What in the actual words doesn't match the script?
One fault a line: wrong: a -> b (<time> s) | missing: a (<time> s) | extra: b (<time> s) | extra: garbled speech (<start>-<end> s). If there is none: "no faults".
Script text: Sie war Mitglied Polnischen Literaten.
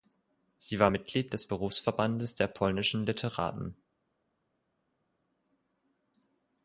extra: des Berufsverbandes der (1.3 s)